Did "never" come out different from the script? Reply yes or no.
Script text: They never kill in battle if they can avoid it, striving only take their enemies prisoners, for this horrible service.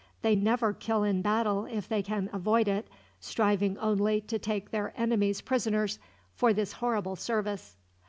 no